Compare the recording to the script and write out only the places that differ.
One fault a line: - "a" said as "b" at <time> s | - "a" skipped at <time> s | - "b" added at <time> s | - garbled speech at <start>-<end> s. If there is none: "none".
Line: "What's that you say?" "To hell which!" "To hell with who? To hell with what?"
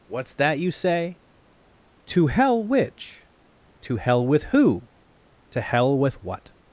none